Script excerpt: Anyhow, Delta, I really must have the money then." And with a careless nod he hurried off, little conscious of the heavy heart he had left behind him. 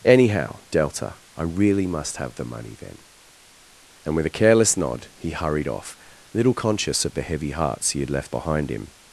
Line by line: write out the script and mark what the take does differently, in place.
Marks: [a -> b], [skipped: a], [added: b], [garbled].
Anyhow, Delta, I really must have the money then." And with a careless nod he hurried off, little conscious of the heavy [heart -> hearts] he had left behind him.